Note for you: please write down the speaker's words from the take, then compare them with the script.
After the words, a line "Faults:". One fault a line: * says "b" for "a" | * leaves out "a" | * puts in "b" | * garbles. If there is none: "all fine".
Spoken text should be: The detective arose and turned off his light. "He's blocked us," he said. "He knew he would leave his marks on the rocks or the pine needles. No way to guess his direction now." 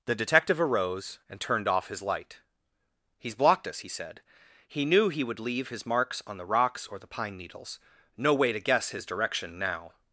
The detective arose and turned off his light. "He's blocked us," he said. "He knew he would leave his marks on the rocks or the pine needles. No way to guess his direction now."
Faults:
all fine